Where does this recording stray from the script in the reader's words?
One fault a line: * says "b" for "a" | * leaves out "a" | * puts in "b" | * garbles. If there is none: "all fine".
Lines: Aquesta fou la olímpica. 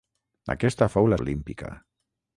all fine